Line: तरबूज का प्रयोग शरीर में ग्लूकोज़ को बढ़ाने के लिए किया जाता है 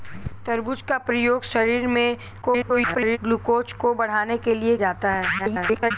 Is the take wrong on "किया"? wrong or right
wrong